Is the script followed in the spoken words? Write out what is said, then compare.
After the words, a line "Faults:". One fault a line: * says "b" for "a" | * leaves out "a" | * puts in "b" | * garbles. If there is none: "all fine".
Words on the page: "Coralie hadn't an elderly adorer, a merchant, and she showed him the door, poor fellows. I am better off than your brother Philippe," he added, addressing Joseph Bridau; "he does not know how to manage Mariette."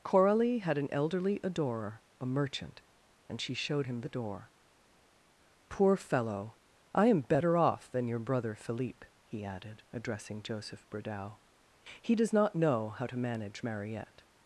"Coralie had an elderly adorer, a merchant, and she showed him the door, poor fellow. I am better off than your brother Philippe," he added, addressing Joseph Bridau; "he does not know how to manage Mariette."
Faults:
* says "had" for "hadn't"
* says "fellow" for "fellows"